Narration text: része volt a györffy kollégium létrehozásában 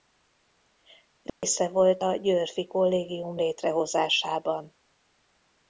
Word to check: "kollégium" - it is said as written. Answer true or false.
true